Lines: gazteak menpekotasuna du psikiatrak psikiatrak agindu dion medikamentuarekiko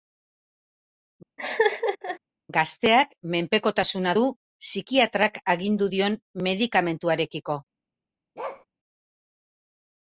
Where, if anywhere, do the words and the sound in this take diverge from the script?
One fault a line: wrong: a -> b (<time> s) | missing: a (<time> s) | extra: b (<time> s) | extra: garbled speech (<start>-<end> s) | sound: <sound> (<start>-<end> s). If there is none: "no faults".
sound: laugh (1.4-2.2 s)
missing: psikiatrak (5.4 s)
sound: bark (8.4-8.7 s)